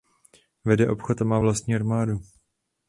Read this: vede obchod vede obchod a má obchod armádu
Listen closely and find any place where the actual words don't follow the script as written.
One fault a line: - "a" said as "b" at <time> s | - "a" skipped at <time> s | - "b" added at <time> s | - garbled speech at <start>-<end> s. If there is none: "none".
- "vede obchod" skipped at 1.2 s
- "obchod" said as "vlastní" at 1.4 s